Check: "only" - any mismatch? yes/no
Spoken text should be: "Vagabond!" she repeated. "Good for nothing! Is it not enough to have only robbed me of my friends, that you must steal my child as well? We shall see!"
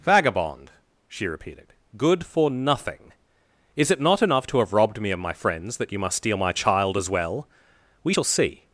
yes